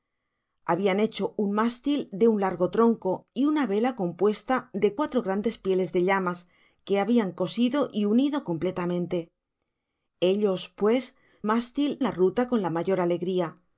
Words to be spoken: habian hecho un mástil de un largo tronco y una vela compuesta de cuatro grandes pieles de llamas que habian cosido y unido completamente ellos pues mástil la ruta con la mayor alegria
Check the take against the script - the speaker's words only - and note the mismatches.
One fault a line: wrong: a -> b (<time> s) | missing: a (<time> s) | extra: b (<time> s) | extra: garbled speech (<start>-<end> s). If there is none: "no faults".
no faults